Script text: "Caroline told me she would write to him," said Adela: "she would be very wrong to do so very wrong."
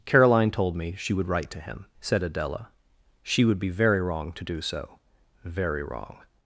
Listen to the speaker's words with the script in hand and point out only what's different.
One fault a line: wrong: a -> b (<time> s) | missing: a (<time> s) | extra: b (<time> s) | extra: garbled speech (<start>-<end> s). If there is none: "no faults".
no faults